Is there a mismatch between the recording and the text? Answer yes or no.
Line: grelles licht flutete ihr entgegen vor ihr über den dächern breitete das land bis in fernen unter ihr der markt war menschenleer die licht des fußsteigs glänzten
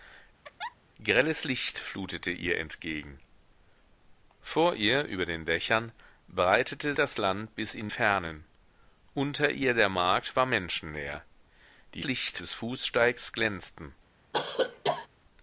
no